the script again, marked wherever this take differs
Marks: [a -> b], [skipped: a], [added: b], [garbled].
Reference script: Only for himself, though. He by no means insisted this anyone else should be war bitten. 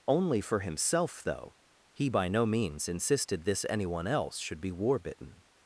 Only for himself, though. He by no means insisted this anyone else should be war bitten.